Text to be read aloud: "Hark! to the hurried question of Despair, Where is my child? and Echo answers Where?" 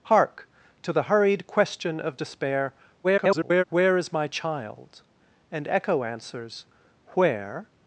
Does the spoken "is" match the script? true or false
true